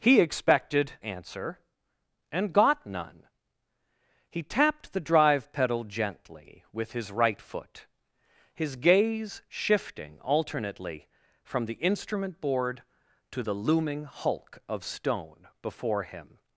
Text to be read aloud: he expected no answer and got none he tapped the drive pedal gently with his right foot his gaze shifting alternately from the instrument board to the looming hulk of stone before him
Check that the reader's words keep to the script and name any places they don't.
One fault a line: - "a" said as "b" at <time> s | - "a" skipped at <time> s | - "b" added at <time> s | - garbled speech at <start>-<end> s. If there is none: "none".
- "no" skipped at 0.9 s